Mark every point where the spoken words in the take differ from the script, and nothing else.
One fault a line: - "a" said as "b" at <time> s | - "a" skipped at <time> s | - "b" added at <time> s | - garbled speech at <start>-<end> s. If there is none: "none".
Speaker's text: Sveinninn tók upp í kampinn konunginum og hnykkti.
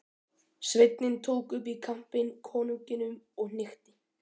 none